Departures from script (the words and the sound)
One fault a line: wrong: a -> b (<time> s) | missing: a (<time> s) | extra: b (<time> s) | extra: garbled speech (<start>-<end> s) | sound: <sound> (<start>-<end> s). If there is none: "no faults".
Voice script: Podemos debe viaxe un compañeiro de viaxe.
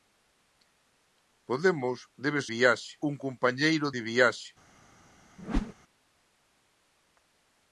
sound: whoosh (5.4-5.7 s)